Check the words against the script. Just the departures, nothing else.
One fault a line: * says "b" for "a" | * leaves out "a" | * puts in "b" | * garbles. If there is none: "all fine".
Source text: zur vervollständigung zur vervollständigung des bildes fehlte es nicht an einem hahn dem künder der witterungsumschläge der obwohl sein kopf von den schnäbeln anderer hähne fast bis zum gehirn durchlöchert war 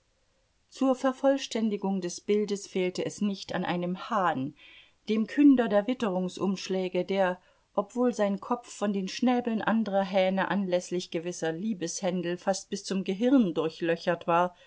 * leaves out "zur vervollständigung"
* puts in "anläßlich gewisser liebeshändel"